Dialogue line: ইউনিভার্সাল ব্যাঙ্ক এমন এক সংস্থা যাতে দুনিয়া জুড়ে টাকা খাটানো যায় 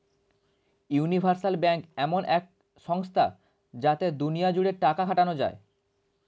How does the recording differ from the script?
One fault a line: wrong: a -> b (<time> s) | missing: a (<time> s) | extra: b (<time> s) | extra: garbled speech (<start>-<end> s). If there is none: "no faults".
no faults